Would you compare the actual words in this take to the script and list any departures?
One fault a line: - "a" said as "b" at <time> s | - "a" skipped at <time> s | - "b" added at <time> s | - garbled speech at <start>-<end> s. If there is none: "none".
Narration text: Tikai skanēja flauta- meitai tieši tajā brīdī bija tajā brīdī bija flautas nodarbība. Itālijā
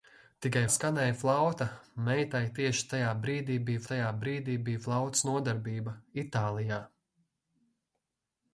none